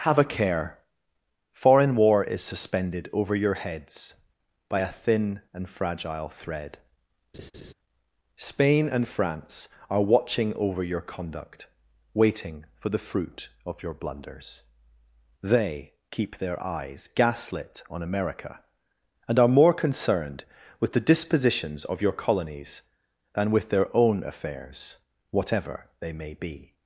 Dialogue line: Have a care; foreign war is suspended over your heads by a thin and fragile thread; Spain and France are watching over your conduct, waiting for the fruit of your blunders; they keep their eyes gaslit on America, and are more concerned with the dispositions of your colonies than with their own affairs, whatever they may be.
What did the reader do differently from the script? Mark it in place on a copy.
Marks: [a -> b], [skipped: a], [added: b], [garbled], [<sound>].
Have a care; foreign war is suspended over your heads by a thin and fragile thread; [laugh] Spain and France are watching over your conduct, waiting for the fruit of your blunders; they keep their eyes gaslit on America, and are more concerned with the dispositions of your colonies than with their own affairs, whatever they may be.